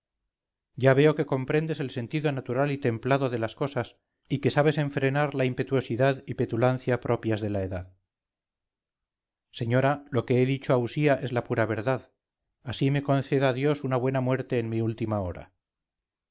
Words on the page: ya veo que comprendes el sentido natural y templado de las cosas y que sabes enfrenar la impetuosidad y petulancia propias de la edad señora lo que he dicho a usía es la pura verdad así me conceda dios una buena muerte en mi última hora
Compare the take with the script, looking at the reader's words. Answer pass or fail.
pass